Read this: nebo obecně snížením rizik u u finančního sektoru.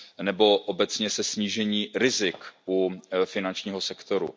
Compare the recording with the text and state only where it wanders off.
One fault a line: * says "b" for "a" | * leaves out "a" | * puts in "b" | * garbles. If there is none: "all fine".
* puts in "se"
* leaves out "u"